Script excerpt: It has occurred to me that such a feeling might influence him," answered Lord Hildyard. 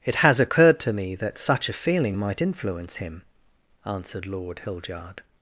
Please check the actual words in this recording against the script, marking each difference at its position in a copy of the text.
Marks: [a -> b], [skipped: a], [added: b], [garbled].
It has occurred to me that such a feeling might influence him," answered Lord Hildyard.